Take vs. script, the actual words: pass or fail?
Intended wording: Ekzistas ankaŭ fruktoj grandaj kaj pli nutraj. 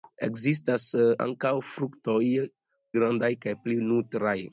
pass